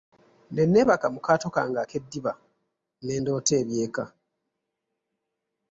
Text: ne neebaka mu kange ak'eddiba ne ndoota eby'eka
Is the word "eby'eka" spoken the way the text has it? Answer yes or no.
yes